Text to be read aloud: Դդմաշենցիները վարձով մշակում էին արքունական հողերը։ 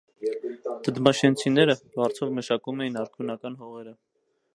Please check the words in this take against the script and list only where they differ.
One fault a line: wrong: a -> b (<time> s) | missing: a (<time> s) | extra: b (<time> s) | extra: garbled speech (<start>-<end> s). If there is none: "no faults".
no faults